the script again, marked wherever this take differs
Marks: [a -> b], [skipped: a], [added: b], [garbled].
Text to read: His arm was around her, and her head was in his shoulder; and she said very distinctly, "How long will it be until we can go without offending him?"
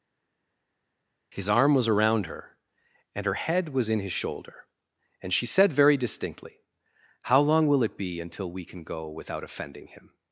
His arm was around her, and her head was in his shoulder; and she said very distinctly, "How long will it be until we can go without offending him?"